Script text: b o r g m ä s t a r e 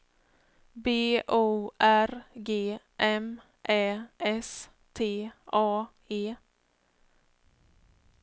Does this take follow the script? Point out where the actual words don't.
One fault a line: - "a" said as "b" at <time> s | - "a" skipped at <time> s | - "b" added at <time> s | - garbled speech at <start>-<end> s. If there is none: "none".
- "r" skipped at 5.9 s